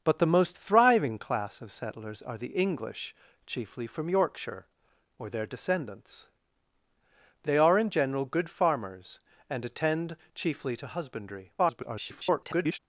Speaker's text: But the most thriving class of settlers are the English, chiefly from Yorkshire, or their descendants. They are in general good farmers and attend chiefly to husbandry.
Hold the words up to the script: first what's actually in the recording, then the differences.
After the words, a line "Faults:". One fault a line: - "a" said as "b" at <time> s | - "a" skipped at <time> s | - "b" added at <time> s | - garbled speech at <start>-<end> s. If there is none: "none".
But the most thriving class of settlers are the English, chiefly from Yorkshire, or their descendants. They are in general good farmers and attend chiefly to husbandry. [garbled]
Faults:
- garbled speech at 11.6-12.8 s